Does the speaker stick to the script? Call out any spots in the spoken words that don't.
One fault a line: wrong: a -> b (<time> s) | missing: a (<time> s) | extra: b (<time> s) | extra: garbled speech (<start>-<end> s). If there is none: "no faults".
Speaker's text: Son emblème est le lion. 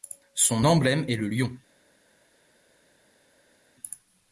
no faults